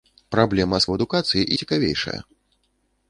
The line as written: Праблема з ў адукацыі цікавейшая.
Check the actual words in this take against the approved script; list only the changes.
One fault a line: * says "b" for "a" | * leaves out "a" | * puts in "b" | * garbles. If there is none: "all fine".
all fine